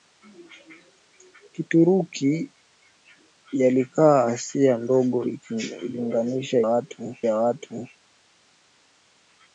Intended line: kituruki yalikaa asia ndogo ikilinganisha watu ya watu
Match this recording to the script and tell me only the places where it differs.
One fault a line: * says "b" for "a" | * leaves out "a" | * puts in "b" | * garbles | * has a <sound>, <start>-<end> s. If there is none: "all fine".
all fine